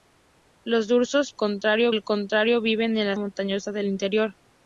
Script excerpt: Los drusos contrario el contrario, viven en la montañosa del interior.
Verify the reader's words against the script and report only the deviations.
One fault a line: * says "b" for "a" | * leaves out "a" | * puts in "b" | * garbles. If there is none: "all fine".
all fine